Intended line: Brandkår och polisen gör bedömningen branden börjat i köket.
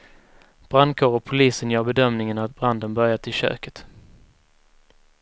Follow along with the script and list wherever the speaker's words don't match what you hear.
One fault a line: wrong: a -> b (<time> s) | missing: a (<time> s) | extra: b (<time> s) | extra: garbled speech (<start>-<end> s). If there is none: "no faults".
extra: att (2.4 s)